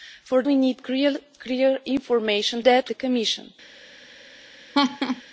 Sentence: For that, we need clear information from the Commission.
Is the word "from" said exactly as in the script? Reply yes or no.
no